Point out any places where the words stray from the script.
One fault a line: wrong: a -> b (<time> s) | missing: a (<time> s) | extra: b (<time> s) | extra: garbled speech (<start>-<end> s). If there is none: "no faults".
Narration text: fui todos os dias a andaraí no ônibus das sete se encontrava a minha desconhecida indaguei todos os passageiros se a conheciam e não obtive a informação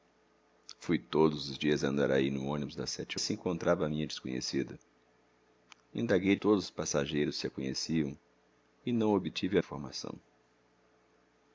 no faults